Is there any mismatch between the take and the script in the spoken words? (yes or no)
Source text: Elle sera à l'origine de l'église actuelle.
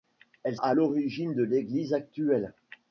yes